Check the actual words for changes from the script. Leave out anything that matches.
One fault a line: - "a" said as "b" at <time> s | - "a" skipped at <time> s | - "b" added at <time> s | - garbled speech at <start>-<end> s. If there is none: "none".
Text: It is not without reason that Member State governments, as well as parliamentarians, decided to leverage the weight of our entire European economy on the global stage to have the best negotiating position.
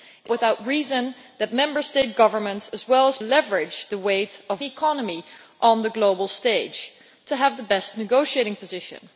- "is not" skipped at 0.3 s
- "parliamentarians decided to" skipped at 3.2 s
- "our entire European" skipped at 4.6 s